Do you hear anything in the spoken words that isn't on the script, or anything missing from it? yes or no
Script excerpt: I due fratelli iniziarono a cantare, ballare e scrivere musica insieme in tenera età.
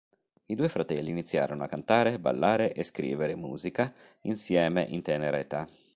no